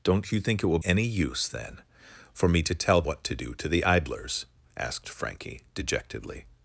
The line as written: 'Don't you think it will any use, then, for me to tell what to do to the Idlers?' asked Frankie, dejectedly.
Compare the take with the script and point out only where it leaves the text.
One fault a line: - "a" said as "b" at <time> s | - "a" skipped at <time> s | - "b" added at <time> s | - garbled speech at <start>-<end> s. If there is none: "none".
none